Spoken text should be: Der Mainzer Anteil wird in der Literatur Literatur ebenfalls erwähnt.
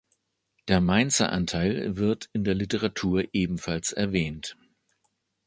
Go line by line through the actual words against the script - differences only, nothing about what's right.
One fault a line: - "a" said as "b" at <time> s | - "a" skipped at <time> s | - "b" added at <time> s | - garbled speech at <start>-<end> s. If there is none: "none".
- "Literatur" skipped at 3.2 s